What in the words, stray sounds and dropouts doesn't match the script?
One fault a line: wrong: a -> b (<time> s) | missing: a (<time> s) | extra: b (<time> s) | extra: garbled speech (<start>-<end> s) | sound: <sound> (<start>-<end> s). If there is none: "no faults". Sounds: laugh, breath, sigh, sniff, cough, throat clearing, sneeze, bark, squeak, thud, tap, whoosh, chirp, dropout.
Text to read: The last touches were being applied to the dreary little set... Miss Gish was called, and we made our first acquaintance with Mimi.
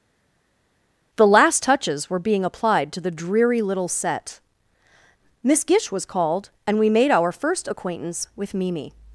no faults